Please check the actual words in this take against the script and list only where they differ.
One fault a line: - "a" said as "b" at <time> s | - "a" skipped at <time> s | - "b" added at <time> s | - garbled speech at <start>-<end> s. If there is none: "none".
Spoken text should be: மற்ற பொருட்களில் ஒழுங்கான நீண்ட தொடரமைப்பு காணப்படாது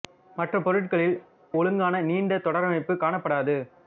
none